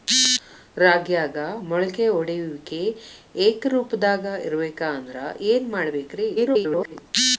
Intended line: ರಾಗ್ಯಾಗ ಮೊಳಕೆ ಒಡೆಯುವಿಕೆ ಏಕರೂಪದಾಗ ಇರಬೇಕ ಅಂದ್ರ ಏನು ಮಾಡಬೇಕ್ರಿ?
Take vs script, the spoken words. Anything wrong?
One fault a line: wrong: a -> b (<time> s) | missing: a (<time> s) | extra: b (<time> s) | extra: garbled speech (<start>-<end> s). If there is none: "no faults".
extra: garbled speech (6.4-7.0 s)